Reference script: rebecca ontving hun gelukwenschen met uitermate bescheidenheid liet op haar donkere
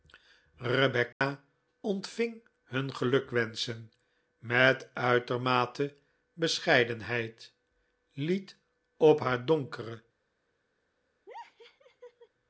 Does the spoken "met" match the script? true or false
true